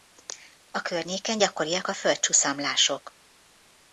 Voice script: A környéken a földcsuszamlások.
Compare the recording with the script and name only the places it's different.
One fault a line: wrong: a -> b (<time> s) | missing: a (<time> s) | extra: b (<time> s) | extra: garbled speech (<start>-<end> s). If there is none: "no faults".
extra: gyakoriak (1.4 s)